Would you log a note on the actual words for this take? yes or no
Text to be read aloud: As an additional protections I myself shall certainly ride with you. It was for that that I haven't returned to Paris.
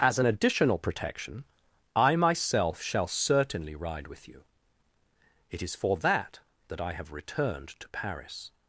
yes